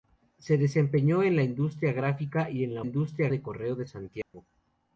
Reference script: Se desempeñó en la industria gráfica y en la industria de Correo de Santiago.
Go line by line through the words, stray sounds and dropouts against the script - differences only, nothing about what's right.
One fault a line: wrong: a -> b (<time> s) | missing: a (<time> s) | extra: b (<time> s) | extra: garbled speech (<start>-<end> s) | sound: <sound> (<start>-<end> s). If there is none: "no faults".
sound: dropout (4.2-4.3 s)